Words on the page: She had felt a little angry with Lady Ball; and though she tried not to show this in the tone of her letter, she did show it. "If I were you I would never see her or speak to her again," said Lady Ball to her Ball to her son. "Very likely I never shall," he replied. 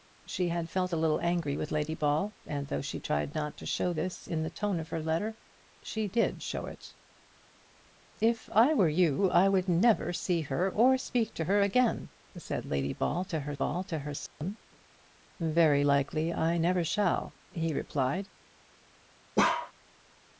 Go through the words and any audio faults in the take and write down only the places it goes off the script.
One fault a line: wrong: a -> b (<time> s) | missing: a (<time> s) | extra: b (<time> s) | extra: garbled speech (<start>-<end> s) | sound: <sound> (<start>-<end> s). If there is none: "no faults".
sound: dropout (14.3-14.4 s)
sound: bark (19.4-19.7 s)